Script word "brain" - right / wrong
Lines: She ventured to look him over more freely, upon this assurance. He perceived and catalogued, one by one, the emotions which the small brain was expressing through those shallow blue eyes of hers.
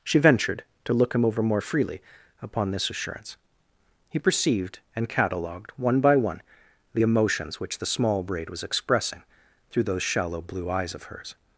wrong